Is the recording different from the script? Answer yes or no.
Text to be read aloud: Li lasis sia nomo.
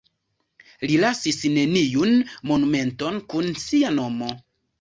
yes